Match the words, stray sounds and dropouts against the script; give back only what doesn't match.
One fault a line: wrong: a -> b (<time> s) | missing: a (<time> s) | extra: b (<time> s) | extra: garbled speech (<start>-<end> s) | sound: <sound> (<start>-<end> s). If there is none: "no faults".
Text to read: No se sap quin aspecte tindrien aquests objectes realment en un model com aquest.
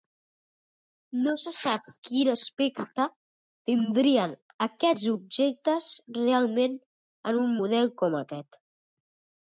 no faults